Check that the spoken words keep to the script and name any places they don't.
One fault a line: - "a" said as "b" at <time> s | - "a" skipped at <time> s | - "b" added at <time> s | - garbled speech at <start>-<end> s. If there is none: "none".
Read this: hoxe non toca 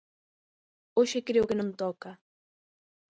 - "creo que" added at 1.3 s